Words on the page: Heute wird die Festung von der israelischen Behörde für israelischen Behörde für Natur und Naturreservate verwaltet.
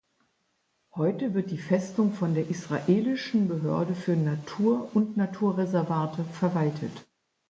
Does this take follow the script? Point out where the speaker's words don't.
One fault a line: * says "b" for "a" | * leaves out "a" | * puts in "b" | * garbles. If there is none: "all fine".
* leaves out "israelischen Behörde für"